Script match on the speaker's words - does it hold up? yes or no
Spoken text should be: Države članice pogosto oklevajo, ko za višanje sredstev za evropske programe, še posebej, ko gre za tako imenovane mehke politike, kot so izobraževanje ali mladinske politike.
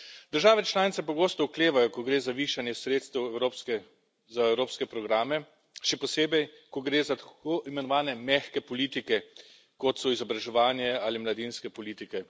no